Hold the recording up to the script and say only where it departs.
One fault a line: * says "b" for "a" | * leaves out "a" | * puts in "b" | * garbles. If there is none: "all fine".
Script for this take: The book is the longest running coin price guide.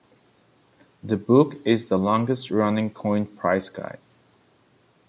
all fine